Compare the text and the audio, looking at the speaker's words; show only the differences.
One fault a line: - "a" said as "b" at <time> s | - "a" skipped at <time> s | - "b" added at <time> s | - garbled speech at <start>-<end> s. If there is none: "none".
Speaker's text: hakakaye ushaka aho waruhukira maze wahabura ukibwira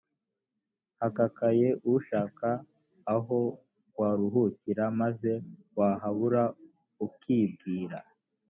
none